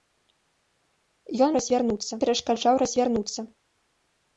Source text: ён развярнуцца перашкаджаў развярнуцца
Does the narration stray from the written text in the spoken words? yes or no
no